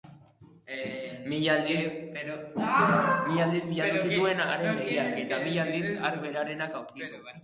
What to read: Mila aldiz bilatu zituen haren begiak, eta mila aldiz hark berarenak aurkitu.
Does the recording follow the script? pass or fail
pass